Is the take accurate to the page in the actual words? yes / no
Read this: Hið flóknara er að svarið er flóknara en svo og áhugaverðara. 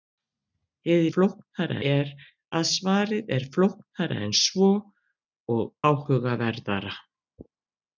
yes